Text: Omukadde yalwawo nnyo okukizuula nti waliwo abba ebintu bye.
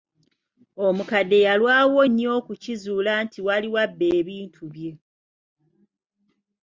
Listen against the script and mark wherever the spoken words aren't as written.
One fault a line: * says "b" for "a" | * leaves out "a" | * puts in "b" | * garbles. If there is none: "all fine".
all fine